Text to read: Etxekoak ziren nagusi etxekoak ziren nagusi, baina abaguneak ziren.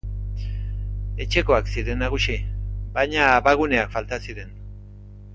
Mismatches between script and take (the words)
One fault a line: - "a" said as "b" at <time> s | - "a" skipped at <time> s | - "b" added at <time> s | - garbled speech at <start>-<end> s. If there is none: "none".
- "etxekoak ziren nagusi" skipped at 2.4 s
- "falta" added at 4.0 s